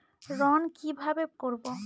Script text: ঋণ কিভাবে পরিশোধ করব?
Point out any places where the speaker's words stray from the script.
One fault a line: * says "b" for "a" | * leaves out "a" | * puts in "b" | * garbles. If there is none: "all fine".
* leaves out "পরিশোধ"